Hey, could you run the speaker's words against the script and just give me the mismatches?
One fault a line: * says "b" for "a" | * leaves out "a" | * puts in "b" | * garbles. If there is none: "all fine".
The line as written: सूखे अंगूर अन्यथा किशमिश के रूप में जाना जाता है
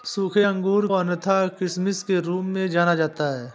all fine